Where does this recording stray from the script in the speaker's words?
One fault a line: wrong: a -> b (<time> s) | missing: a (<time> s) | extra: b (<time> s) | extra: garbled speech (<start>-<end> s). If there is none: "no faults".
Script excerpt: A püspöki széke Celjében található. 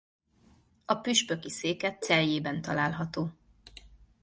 no faults